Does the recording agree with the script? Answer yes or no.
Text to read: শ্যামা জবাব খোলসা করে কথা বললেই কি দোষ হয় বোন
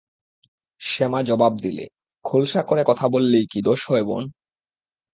no